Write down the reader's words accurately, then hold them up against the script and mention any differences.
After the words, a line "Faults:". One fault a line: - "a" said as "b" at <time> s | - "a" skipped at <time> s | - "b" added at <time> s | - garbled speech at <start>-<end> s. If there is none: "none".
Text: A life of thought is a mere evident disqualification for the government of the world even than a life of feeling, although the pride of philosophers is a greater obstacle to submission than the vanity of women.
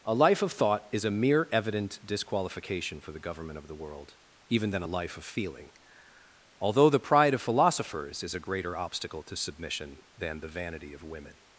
A life of thought is a mere evident disqualification for the government of the world even than a life of feeling, although the pride of philosophers is a greater obstacle to submission than the vanity of women.
Faults:
none